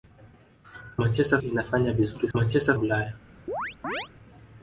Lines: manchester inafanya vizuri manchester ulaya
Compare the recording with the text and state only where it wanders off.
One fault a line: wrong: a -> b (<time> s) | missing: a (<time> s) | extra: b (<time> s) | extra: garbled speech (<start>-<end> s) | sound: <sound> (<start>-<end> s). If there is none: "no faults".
sound: chirp (3.5-4.1 s)